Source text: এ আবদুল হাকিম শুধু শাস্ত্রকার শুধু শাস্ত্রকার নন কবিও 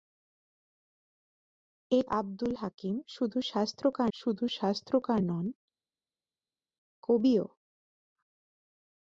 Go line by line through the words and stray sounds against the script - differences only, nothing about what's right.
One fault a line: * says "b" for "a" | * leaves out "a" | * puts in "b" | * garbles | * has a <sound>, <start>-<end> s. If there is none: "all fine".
all fine